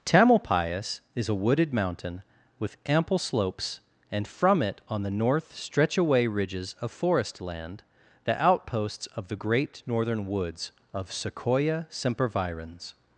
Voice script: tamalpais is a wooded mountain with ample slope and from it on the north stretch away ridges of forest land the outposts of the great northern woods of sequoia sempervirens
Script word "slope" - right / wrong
wrong